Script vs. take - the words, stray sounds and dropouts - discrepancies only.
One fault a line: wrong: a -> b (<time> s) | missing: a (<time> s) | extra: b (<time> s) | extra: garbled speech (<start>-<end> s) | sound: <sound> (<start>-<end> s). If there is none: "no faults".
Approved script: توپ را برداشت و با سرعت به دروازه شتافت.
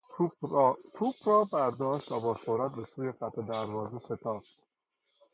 extra: سوی خط (2.8 s)